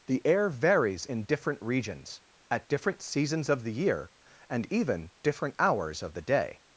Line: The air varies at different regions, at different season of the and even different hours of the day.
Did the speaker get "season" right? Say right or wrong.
wrong